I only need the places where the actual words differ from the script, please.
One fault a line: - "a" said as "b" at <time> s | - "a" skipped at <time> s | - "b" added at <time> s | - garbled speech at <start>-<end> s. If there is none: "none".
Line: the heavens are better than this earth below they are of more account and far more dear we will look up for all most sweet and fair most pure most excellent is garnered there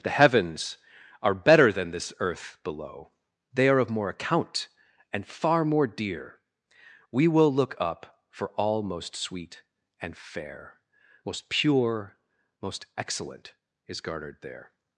none